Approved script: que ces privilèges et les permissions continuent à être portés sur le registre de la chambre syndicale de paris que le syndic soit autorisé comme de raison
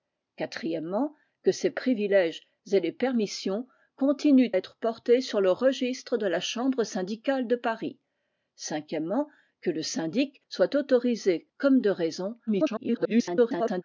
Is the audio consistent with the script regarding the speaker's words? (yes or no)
no